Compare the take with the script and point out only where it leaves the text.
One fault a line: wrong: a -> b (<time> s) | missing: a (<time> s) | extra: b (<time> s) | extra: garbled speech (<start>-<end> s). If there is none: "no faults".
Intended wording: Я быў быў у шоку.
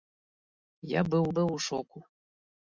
no faults